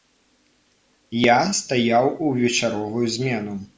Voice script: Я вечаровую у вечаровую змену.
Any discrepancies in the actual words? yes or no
yes